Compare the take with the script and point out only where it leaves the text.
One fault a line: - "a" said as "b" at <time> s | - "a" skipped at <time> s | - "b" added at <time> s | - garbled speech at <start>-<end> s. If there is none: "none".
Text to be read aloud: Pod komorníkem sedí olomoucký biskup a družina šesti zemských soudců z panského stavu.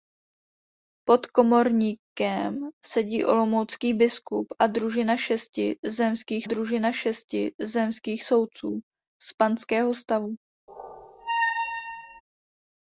- "družina šesti zemských" added at 6.4 s